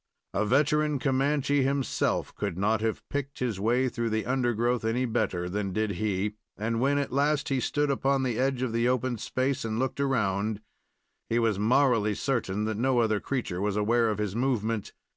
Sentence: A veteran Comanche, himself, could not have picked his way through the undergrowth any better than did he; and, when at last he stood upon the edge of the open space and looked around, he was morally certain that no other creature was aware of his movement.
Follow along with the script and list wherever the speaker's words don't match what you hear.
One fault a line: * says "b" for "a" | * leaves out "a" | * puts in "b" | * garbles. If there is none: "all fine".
all fine